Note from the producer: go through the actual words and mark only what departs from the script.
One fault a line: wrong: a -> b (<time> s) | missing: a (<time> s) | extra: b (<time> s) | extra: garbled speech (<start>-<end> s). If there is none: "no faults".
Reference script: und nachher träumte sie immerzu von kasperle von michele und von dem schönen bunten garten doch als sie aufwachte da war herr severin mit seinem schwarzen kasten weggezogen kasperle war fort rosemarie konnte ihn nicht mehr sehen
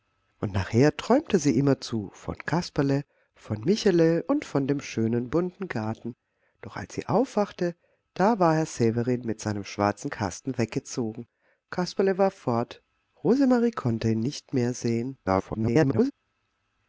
extra: garbled speech (15.2-16.1 s)